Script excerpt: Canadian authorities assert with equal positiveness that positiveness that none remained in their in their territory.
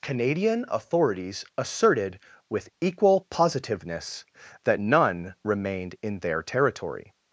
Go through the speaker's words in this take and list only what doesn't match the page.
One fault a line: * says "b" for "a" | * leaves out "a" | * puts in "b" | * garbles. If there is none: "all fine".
* says "asserted" for "assert"
* leaves out "positiveness that"
* leaves out "in their"